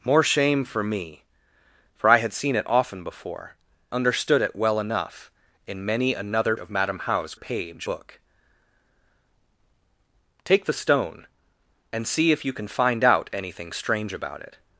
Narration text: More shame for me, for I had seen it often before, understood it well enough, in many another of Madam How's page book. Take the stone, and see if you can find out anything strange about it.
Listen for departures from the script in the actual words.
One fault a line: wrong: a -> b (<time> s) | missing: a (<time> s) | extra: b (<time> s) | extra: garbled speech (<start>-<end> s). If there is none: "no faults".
no faults